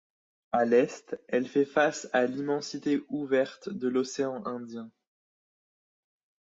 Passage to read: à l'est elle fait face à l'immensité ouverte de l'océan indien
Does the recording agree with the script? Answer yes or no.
yes